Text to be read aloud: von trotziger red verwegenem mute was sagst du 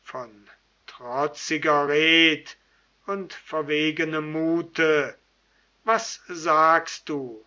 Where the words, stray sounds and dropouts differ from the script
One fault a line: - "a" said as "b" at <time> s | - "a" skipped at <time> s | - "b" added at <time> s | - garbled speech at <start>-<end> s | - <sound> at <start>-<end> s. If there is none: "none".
- "und" added at 3.1 s